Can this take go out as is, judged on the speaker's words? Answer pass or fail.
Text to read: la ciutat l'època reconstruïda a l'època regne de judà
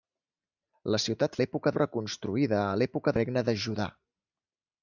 pass